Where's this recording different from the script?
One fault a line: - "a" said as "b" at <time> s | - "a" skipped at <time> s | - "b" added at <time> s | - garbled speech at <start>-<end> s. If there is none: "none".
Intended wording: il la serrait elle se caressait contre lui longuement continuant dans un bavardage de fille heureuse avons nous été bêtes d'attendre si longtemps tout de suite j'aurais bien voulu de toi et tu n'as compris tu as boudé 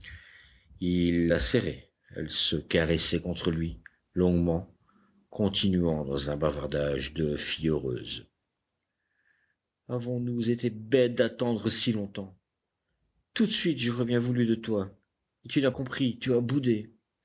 none